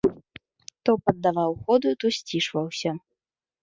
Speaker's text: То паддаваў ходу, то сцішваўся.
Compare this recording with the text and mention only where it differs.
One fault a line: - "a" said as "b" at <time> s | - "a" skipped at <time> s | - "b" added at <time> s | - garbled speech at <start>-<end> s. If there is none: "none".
none